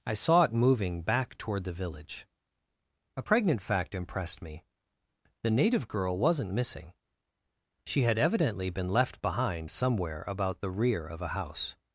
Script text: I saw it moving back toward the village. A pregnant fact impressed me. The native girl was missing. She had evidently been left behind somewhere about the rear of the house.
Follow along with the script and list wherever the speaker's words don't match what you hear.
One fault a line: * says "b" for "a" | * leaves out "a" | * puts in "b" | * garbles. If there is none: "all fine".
* says "wasn't" for "was"
* says "a" for "the"